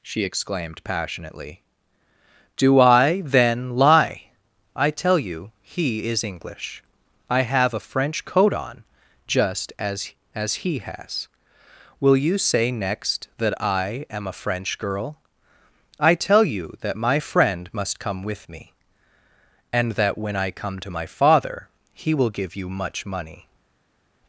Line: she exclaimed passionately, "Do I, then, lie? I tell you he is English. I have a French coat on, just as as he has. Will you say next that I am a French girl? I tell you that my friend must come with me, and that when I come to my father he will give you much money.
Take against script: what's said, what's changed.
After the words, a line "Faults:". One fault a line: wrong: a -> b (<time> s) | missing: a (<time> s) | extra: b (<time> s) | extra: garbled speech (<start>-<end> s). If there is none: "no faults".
she exclaimed passionately, "Do I, then, lie? I tell you he is English. I have a French coat on, just as as he has. Will you say next that I am a French girl? I tell you that my friend must come with me, and that when I come to my father he will give you much money.
Faults:
no faults